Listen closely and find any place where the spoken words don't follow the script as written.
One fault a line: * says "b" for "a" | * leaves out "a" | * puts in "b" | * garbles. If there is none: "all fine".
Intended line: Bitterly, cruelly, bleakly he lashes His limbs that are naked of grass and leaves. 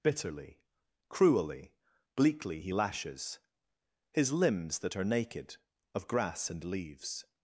all fine